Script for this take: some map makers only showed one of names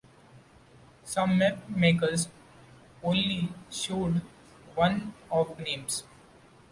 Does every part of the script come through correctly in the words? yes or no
yes